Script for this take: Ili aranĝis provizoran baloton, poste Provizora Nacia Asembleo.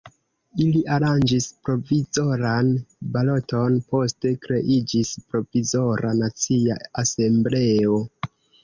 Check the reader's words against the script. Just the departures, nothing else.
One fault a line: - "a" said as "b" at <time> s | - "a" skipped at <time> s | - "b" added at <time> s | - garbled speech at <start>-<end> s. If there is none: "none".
- "kreiĝis" added at 4.5 s